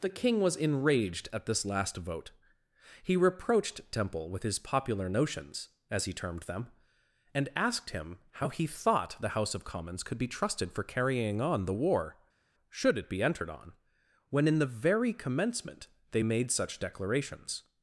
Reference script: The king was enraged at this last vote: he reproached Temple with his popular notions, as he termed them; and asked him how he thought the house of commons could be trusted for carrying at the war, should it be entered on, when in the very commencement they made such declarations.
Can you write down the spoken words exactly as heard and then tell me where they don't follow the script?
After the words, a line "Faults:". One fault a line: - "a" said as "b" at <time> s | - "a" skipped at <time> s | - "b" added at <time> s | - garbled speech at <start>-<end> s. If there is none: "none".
The king was enraged at this last vote: he reproached Temple with his popular notions, as he termed them; and asked him how he thought the house of commons could be trusted for carrying on the war, should it be entered on, when in the very commencement they made such declarations.
Faults:
- "at" said as "on" at 11.4 s